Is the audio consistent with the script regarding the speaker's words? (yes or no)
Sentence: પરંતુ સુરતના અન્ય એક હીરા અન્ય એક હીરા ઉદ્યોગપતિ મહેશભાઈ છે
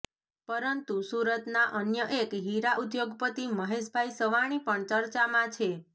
no